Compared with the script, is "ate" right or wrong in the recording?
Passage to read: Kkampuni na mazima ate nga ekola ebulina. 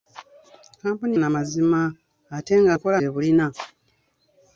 right